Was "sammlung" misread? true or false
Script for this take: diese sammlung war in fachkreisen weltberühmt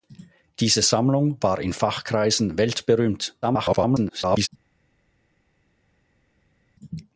false